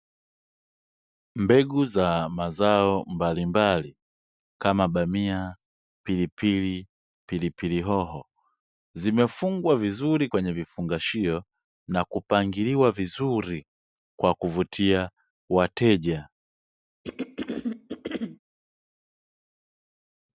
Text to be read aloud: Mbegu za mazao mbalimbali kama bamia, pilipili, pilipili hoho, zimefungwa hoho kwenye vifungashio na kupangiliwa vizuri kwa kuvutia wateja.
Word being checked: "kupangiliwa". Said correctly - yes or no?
yes